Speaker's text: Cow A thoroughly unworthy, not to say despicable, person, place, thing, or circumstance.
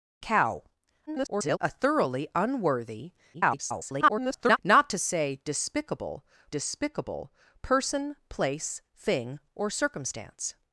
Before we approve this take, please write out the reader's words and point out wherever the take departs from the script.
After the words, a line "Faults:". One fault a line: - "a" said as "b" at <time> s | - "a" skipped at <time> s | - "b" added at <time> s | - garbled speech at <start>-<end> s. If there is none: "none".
Cow [garbled] A thoroughly unworthy, [garbled] not to say despicable despicable, person, place, thing, or circumstance.
Faults:
- garbled speech at 1.1-1.6 s
- garbled speech at 3.3-4.6 s
- "despicable" added at 6.5 s